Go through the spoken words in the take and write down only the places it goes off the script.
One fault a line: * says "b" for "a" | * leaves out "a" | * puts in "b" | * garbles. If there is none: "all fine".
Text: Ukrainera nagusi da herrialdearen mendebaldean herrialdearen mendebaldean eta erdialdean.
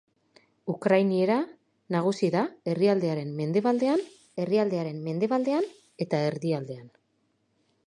all fine